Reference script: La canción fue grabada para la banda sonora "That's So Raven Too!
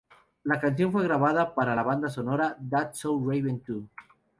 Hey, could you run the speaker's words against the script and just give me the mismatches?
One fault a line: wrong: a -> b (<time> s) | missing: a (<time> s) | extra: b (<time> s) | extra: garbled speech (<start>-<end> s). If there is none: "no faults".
no faults